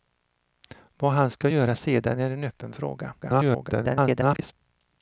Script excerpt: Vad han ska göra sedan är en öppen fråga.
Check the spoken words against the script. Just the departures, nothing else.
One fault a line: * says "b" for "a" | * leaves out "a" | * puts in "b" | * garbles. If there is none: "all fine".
* garbles